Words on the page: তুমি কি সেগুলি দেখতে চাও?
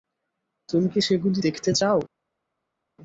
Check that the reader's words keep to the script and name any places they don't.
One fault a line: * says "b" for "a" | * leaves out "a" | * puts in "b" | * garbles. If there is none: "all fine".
all fine